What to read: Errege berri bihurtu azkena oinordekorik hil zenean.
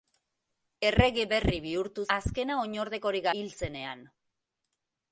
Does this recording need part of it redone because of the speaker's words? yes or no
no